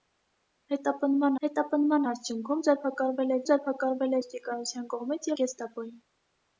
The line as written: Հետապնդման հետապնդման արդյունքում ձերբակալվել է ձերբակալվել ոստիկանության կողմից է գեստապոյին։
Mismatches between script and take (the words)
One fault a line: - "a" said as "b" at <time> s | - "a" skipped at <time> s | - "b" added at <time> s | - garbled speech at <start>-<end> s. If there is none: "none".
none